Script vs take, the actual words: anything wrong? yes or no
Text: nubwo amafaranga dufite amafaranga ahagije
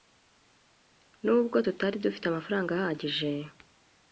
yes